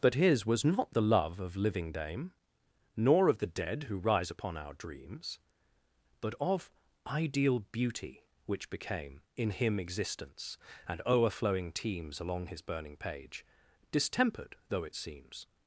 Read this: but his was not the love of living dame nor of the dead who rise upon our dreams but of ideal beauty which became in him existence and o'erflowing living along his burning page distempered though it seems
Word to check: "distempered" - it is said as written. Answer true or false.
true